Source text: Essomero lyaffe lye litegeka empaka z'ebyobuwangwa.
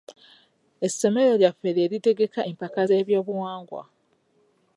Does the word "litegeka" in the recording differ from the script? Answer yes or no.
no